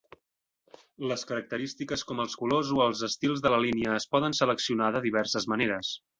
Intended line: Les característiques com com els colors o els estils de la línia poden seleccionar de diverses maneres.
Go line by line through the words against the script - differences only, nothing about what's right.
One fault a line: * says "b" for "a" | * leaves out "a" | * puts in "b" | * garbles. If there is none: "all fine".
* leaves out "com"
* puts in "es"